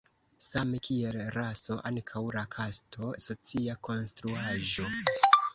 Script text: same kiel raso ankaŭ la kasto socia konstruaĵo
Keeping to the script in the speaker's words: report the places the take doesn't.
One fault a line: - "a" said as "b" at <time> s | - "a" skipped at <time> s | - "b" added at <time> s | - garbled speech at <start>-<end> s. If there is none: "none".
none